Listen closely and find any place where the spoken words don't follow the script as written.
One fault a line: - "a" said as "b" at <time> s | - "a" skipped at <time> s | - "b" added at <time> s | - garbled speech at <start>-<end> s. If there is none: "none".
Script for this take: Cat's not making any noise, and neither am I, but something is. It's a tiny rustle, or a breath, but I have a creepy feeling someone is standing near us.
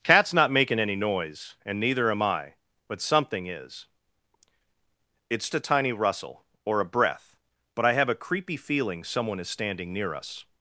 none